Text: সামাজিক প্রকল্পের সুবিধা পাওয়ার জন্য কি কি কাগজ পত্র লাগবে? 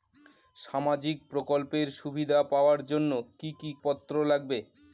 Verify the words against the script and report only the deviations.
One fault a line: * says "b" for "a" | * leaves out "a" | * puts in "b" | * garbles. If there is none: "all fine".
* leaves out "কাগজ"